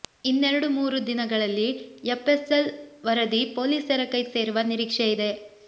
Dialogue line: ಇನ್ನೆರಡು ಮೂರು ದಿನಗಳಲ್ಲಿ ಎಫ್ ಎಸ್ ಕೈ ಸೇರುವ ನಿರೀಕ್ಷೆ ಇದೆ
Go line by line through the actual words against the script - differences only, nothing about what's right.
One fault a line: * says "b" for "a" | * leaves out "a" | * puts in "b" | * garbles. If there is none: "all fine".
* puts in "ಎಲ್ ವರದಿ ಪೊಲೀಸರ"